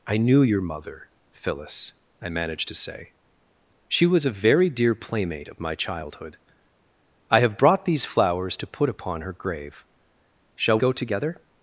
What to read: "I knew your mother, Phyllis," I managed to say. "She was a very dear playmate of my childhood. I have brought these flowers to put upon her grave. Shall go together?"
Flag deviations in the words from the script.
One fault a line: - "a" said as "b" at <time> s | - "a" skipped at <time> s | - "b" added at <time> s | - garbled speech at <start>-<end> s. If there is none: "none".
none